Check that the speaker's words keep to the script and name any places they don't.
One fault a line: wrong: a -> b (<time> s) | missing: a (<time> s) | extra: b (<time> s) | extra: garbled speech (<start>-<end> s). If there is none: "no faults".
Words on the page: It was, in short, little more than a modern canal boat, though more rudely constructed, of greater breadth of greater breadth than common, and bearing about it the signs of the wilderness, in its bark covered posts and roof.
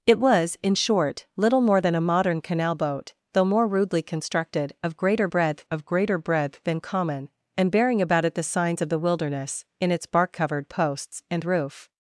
no faults